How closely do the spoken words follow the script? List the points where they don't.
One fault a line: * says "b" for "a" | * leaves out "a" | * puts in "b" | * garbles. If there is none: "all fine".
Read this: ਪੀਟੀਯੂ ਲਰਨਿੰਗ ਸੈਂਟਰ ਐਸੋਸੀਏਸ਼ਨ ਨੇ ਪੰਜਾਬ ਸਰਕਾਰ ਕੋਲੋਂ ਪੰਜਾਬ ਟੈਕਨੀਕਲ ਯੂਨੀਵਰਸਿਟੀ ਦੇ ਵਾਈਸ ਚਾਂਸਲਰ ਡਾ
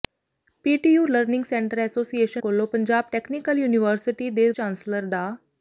* leaves out "ਨੇ ਪੰਜਾਬ ਸਰਕਾਰ"
* leaves out "ਵਾਈਸ"